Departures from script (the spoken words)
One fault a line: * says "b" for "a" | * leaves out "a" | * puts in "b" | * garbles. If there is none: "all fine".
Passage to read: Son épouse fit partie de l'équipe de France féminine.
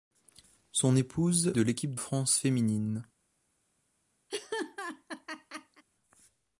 * leaves out "fit partie"
* leaves out "de"